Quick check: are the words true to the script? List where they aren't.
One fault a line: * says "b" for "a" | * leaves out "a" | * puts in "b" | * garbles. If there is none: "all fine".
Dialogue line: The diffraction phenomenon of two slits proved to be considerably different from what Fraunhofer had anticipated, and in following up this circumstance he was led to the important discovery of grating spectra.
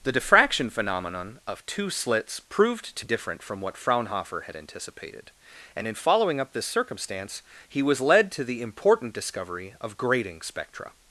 * leaves out "be considerably"